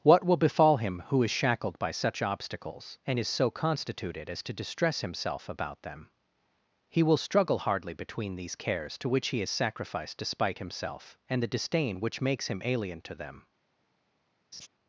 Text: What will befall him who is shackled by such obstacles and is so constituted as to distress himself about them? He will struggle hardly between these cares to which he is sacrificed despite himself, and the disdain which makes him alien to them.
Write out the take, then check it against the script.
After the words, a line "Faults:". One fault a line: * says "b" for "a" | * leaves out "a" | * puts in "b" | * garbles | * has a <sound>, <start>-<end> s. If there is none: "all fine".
What will befall him who is shackled by such obstacles and is so constituted as to distress himself about them? He will struggle hardly between these cares to which he is sacrificed despite himself, and the disdain which makes him alien to them.
Faults:
* has a laugh, 14.5-14.7 s